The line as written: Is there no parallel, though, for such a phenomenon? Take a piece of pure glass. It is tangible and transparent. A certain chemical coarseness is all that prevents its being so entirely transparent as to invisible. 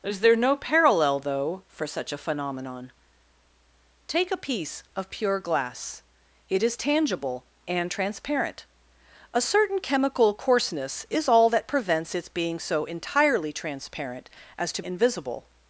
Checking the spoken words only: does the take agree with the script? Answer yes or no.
yes